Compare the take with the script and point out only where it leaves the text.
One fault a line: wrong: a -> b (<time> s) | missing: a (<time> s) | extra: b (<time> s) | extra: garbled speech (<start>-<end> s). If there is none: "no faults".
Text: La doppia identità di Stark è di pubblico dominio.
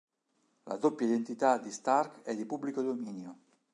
no faults